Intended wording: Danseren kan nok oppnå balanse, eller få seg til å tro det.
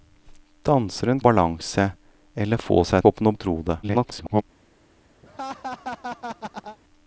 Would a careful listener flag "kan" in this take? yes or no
yes